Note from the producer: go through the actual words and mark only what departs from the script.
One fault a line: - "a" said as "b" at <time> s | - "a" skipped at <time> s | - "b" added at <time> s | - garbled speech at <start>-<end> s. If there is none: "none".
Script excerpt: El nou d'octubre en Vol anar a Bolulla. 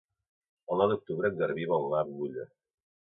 - "Garbí" added at 1.4 s